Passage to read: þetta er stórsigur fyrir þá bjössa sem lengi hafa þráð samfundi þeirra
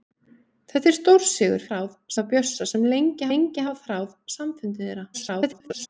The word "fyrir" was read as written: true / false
false